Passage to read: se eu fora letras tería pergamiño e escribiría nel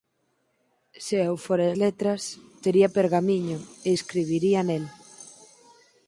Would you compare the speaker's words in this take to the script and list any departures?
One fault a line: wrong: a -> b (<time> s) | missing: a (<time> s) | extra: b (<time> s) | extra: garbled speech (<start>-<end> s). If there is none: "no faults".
no faults